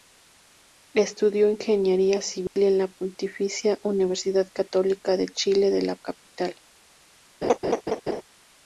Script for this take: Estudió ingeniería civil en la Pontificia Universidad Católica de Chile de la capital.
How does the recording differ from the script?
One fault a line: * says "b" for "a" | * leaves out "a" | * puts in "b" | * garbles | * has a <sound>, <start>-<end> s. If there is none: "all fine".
* has a dropout, 2.5-2.6 s
* has a laugh, 7.4-8.2 s